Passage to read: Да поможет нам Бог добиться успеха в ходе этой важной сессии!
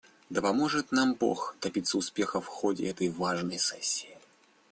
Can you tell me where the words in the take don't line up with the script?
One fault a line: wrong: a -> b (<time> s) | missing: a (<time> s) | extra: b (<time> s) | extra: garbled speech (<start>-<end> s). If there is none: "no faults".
no faults